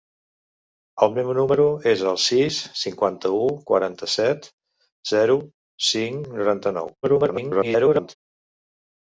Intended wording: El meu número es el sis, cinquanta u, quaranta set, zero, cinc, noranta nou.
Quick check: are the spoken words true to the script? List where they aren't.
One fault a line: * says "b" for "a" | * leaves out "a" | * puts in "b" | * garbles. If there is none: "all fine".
* garbles